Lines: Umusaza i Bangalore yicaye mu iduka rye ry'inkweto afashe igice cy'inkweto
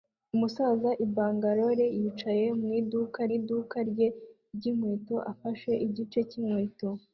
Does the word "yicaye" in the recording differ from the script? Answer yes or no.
no